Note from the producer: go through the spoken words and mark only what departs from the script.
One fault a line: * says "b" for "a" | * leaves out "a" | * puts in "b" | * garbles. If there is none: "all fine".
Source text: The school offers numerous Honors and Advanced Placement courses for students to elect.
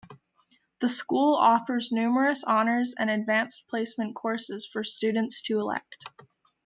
all fine